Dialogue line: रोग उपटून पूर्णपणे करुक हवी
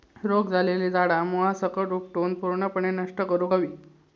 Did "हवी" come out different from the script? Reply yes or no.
no